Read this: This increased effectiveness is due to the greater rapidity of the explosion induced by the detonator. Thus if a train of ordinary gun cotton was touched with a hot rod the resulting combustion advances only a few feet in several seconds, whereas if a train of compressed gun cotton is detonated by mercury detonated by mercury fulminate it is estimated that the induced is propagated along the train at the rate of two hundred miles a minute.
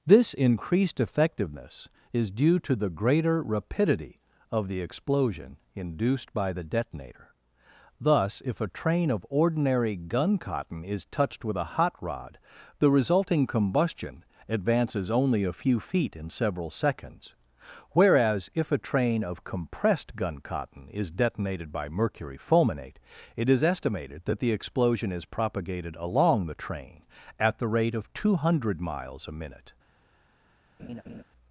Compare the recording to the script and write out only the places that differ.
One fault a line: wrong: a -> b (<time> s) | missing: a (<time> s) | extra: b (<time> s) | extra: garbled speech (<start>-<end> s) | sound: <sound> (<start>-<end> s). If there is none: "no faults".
wrong: was -> is (10.8 s)
missing: detonated by mercury (22.4 s)
wrong: induced -> explosion (24.5 s)
sound: laugh (30.8-31.2 s)